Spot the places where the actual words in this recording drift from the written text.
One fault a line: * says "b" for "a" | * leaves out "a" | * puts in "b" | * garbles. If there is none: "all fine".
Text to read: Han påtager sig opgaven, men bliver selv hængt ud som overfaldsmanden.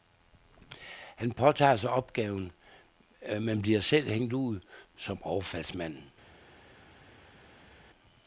all fine